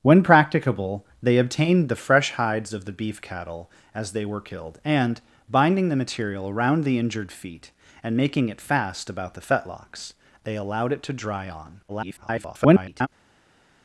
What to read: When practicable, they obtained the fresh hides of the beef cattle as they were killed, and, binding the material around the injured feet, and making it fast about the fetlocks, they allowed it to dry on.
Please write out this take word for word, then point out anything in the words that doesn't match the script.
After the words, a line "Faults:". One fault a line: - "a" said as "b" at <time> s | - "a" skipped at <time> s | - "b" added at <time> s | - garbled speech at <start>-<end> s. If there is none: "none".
When practicable, they obtained the fresh hides of the beef cattle as they were killed, and, binding the material around the injured feet, and making it fast about the fetlocks, they allowed it to dry on. [garbled]
Faults:
- garbled speech at 11.9-13.1 s